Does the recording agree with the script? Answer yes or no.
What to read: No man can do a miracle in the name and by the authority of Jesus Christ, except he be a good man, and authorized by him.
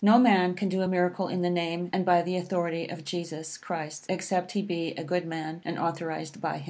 yes